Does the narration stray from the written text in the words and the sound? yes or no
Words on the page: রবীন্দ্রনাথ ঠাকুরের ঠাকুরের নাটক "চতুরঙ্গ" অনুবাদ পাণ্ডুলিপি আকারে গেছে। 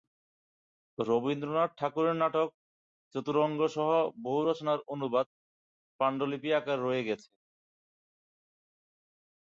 yes